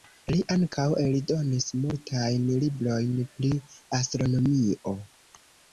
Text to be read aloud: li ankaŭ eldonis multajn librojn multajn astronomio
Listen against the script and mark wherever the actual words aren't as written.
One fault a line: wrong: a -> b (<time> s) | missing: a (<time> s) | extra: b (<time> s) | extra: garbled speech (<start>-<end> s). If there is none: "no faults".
wrong: multajn -> pri (3.3 s)